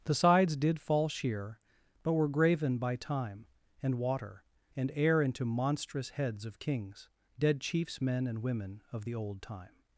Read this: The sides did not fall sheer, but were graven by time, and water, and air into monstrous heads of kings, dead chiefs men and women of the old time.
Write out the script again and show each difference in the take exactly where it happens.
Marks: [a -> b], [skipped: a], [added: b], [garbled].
The sides did [skipped: not] fall sheer, but were graven by time, and water, and air into monstrous heads of kings, dead chiefs men and women of the old time.